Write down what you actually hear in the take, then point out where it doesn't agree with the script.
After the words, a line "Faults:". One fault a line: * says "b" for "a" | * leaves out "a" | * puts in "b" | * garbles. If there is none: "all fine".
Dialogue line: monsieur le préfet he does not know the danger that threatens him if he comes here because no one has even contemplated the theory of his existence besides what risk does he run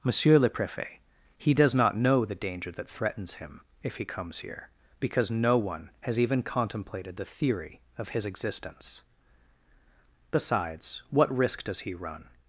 monsieur le préfet he does not know the danger that threatens him if he comes here because no one has even contemplated the theory of his existence besides what risk does he run
Faults:
all fine